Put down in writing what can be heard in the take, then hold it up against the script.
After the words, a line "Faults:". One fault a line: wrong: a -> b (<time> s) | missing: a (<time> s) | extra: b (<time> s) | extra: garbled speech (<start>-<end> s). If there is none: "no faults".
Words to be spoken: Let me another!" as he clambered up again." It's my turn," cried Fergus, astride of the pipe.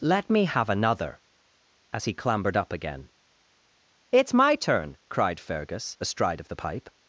Let me have another!" as he clambered up again." It's my turn," cried Fergus, astride of the pipe.
Faults:
extra: have (0.5 s)